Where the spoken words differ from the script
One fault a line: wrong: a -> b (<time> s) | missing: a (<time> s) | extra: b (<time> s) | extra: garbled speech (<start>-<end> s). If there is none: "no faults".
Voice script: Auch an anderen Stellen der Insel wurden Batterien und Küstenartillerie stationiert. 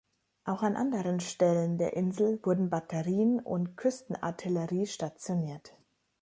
no faults